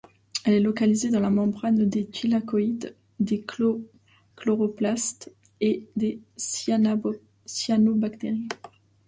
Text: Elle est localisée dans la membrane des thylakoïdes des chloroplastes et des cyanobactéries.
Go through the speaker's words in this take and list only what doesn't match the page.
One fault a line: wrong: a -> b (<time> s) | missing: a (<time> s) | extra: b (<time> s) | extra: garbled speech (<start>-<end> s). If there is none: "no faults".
no faults